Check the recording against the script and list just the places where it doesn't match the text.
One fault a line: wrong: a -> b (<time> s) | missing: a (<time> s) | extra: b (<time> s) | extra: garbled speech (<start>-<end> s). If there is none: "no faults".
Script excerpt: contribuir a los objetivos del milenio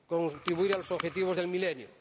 no faults